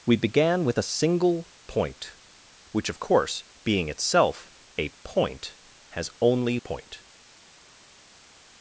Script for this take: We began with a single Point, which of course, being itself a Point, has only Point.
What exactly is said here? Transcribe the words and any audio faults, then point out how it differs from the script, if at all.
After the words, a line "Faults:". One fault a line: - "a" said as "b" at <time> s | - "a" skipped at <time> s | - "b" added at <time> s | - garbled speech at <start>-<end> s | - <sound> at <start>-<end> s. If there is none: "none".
We began with a single Point, which of course, being itself a Point, has only Point.
Faults:
none